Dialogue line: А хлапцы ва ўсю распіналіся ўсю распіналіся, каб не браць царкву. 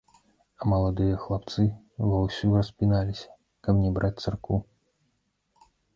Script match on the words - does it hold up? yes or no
no